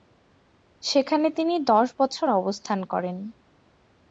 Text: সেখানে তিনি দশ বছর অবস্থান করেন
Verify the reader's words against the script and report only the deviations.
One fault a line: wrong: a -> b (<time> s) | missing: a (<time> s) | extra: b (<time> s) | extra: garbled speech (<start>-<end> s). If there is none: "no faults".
no faults